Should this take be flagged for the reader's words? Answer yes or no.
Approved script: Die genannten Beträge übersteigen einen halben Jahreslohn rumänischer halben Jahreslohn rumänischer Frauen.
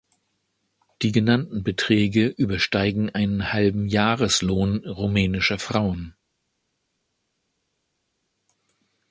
yes